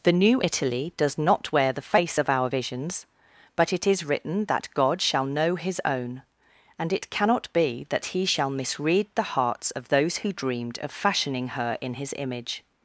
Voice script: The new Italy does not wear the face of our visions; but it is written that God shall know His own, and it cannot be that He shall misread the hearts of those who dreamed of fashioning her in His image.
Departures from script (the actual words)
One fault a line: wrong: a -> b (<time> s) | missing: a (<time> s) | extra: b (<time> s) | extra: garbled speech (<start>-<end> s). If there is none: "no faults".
no faults